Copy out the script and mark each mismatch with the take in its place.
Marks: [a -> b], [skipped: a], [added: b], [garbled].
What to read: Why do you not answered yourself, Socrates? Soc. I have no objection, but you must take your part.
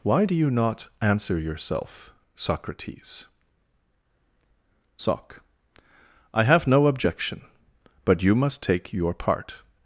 Why do you not [answered -> answer] yourself, Socrates? Soc. I have no objection, but you must take your part.